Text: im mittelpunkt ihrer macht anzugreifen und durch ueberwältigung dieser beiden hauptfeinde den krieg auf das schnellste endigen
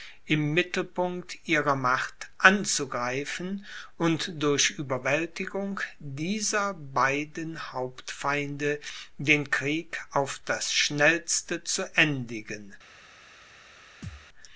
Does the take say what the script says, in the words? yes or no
no